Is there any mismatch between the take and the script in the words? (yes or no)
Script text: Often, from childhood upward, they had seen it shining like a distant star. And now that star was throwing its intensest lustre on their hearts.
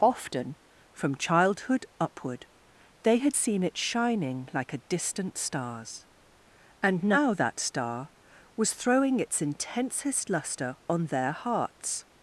yes